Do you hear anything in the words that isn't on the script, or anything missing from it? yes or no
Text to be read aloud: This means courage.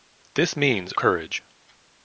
no